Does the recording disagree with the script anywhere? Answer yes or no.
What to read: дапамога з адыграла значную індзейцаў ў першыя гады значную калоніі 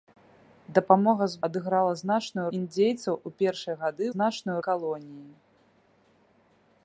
no